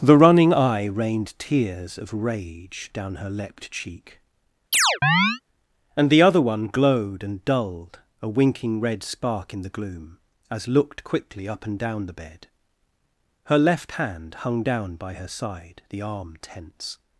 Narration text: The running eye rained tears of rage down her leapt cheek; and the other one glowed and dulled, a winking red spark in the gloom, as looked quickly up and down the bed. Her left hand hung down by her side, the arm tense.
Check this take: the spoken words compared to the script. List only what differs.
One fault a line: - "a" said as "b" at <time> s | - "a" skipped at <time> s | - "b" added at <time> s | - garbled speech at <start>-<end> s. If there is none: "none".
none